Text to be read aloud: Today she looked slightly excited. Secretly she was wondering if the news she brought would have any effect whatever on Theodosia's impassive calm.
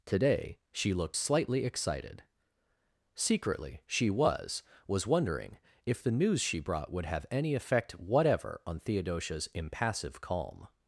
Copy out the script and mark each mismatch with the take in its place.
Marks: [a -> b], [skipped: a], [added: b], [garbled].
Today she looked slightly excited. Secretly she was [added: was] wondering if the news she brought would have any effect whatever on Theodosia's impassive calm.